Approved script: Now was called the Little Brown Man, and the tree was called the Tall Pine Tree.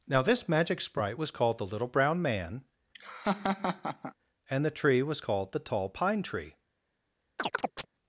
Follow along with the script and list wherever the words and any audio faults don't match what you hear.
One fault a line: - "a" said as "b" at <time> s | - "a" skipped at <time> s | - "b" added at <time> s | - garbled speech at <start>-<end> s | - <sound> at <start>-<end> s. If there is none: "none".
- "this magic sprite" added at 0.2 s
- laugh at 2.9-4.1 s
- chirp at 7.4-7.9 s